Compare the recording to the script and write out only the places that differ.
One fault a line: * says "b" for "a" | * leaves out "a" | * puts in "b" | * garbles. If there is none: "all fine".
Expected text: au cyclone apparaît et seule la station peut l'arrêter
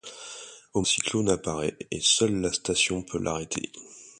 all fine